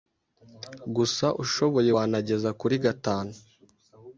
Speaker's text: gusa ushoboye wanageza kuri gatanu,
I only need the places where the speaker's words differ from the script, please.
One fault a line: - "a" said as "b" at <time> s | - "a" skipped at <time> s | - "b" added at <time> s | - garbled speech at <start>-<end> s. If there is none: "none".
none